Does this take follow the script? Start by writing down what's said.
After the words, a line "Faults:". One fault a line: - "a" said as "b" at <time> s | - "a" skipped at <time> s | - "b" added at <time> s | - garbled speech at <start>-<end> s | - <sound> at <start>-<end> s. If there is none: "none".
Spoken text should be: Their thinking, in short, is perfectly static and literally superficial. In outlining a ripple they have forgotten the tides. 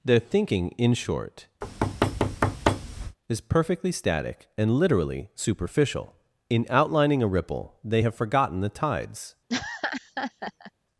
Their thinking, in short, is perfectly static and literally superficial. In outlining a ripple they have forgotten the tides.
Faults:
- thud at 1.6-3.2 s
- laugh at 9.5-10.7 s